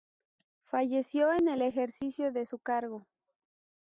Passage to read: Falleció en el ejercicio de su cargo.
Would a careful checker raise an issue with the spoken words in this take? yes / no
no